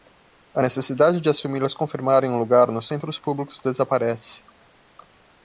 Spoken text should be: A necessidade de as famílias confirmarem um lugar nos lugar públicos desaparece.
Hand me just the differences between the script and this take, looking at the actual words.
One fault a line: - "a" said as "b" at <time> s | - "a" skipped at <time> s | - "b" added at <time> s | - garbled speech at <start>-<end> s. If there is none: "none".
- "lugar" said as "centros" at 2.9 s